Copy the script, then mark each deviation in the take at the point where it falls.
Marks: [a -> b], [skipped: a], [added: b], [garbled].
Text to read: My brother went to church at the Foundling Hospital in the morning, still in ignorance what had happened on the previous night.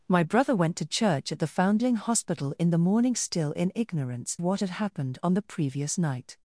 My brother went to church at the Foundling Hospital in the morning, still in ignorance what had happened on the previous night.